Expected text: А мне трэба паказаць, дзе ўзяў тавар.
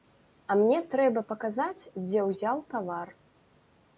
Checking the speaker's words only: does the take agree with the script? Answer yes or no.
yes